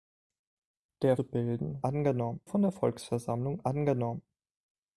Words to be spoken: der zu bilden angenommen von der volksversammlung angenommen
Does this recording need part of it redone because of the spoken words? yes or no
no